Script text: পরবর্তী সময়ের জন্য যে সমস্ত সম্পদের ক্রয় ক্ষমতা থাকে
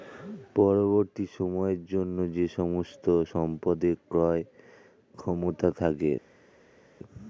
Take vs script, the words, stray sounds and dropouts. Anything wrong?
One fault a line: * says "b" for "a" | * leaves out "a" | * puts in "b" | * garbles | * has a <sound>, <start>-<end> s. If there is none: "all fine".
all fine